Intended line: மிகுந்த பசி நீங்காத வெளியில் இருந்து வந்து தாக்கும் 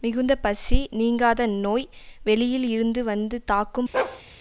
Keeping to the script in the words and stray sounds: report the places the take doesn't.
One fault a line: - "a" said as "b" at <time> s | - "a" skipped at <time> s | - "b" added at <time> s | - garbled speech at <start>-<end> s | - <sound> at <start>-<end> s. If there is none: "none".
- "நோய்" added at 1.6 s
- bark at 3.9-4.2 s